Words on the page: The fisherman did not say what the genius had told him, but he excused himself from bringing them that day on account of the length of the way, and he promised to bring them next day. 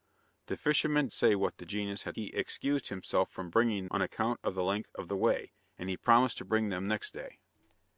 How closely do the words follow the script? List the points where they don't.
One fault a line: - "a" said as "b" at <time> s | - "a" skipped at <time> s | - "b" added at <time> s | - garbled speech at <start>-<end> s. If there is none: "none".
- "did not" skipped at 1.1 s
- "told him but" skipped at 2.2 s
- "them that day" skipped at 3.9 s